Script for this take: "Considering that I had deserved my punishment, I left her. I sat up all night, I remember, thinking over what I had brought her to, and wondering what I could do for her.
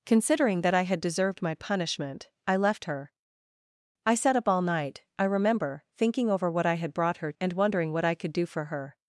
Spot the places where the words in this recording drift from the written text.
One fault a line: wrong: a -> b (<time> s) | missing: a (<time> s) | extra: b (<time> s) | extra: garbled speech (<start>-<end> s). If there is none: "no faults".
missing: to (7.3 s)